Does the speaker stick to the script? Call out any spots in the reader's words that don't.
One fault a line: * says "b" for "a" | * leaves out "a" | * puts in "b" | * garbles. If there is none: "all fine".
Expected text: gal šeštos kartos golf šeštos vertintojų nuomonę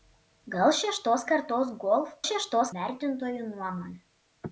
all fine